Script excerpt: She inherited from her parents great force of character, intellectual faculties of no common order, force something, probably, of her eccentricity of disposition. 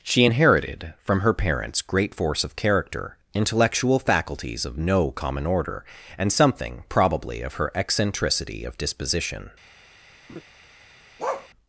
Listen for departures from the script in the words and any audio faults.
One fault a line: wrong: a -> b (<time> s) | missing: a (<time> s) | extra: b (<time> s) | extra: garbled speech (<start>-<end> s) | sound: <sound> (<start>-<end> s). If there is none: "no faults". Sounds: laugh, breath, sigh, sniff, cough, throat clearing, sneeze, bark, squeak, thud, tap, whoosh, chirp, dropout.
wrong: force -> and (6.2 s)
sound: laugh (10.3-10.4 s)
sound: bark (11.2-11.5 s)